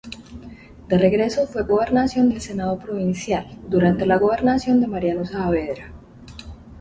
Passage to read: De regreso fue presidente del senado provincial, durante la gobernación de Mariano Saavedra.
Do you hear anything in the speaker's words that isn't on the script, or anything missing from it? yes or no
yes